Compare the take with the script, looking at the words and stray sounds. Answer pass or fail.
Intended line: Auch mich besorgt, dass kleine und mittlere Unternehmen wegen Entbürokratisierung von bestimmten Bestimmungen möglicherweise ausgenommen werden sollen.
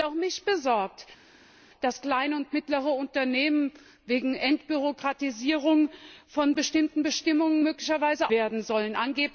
fail